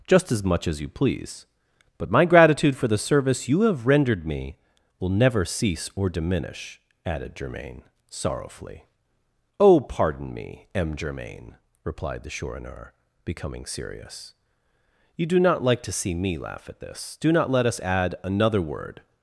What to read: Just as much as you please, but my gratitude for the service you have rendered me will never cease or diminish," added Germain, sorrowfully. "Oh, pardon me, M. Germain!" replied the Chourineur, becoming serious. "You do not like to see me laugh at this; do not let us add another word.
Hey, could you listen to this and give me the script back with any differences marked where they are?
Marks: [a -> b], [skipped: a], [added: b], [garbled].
Just as much as you please, but my gratitude for the service you have rendered me will never cease or diminish," added Germain, sorrowfully. "Oh, pardon me, M. Germain!" replied the Chourineur, becoming serious. "You do not like to see me laugh at this; do not let us add another word.